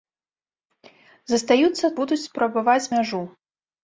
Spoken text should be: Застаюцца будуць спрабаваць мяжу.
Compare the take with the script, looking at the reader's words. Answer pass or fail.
pass